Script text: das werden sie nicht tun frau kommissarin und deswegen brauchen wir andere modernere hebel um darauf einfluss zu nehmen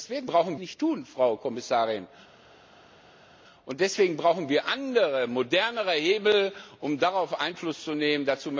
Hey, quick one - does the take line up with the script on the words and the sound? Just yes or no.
no